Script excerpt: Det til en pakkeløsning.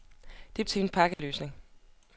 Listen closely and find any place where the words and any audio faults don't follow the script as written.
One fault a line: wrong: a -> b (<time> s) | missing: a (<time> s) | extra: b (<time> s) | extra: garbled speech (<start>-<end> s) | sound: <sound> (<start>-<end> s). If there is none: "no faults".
sound: dropout (1.1-1.2 s)